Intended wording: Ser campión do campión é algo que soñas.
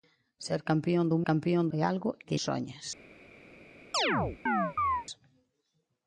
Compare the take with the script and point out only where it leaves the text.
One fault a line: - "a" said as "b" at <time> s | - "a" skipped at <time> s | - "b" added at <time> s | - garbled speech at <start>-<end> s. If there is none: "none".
none